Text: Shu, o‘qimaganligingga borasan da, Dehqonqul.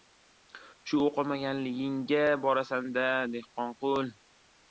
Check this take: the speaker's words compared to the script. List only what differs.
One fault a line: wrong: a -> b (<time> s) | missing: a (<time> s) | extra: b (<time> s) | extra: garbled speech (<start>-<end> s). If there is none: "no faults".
no faults